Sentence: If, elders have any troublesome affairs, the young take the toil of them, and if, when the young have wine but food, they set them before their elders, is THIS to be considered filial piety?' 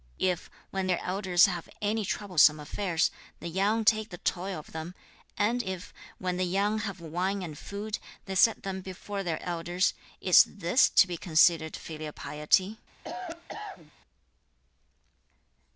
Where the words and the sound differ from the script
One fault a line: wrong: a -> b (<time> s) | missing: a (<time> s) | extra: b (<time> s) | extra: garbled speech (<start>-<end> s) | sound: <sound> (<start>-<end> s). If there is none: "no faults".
extra: when their (0.7 s)
wrong: but -> and (7.4 s)
sound: cough (13.0-13.9 s)